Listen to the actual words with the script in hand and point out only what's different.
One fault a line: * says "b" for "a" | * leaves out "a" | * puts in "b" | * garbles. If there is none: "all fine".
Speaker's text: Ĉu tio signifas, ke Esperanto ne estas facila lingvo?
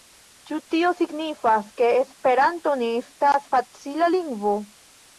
all fine